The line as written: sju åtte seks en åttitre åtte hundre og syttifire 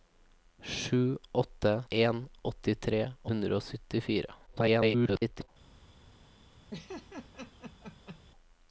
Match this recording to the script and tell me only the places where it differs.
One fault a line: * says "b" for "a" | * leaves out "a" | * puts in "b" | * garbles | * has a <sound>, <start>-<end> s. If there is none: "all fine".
* leaves out "seks"
* leaves out "åtte"
* garbles
* has a laugh, 6.7-8.2 s